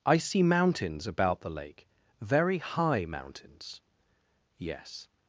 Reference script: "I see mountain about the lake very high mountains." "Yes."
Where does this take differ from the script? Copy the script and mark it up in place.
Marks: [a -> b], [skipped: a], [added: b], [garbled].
"I see [mountain -> mountains] about the lake very high mountains." "Yes."